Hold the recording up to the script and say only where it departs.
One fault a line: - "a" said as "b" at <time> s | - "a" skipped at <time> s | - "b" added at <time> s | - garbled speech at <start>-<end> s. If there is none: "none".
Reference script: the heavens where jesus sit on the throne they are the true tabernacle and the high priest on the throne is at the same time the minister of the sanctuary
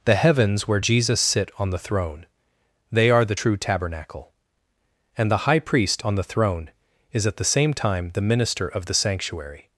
none